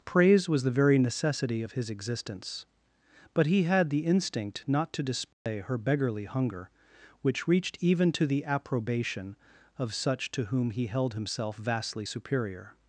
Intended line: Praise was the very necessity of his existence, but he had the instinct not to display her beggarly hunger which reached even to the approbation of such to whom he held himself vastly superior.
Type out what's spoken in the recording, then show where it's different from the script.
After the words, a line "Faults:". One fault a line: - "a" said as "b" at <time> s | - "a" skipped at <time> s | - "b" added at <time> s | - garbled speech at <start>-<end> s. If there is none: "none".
Praise was the very necessity of his existence, but he had the instinct not to display her beggarly hunger which reached even to the approbation of such to whom he held himself vastly superior.
Faults:
none